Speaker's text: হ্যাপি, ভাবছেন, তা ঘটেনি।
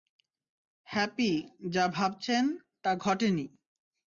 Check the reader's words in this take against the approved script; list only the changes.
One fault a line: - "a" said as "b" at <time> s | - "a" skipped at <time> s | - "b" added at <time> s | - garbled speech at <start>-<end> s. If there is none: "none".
- "যা" added at 1.7 s